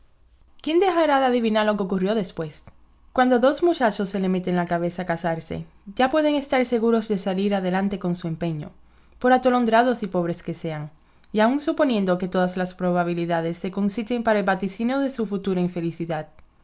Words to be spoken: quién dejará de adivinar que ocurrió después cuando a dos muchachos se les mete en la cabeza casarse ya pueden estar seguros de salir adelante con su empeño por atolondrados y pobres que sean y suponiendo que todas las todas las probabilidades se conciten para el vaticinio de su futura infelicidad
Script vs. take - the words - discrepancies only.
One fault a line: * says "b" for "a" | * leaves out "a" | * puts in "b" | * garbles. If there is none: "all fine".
* puts in "lo"
* puts in "aun"
* leaves out "todas las"